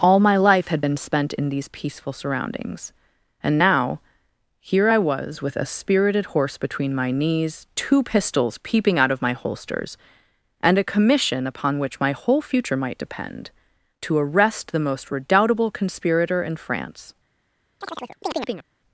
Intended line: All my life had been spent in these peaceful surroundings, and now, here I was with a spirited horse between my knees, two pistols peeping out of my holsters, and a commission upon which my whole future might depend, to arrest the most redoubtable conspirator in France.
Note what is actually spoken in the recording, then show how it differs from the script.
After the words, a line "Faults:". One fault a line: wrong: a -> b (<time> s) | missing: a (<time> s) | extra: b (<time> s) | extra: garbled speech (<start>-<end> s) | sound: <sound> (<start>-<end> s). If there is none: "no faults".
All my life had been spent in these peaceful surroundings, and now, here I was with a spirited horse between my knees, two pistols peeping out of my holsters, and a commission upon which my whole future might depend, to arrest the most redoubtable conspirator in France.
Faults:
sound: chirp (17.8-18.7 s)